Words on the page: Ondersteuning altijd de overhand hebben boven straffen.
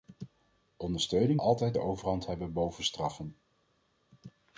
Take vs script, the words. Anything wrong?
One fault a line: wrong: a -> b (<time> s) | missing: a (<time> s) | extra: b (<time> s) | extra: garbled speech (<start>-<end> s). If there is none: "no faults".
no faults